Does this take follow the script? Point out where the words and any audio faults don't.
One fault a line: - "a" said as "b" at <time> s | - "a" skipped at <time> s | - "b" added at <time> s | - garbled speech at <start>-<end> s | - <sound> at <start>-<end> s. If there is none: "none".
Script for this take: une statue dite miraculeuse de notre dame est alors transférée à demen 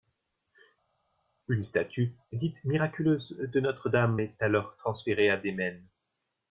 none